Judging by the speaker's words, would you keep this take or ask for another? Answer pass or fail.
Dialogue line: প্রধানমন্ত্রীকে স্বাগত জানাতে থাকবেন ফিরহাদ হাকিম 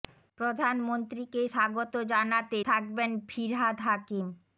pass